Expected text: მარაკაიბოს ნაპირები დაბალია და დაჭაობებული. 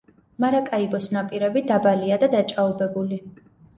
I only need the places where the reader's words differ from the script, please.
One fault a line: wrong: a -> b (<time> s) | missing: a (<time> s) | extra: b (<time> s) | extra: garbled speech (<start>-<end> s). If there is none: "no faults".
no faults